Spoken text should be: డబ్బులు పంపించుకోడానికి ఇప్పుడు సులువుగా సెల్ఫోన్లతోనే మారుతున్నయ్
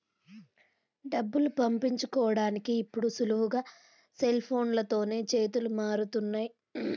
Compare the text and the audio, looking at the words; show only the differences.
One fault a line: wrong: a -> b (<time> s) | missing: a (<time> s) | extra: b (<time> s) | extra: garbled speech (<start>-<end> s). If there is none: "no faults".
extra: చేతులు (5.3 s)